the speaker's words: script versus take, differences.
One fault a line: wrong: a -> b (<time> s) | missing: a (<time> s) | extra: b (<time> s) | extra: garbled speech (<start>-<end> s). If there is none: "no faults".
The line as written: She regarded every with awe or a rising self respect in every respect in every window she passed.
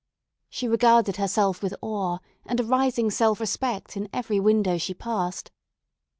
wrong: every -> herself (1.2 s)
wrong: or -> and (2.5 s)
missing: respect in every (4.4 s)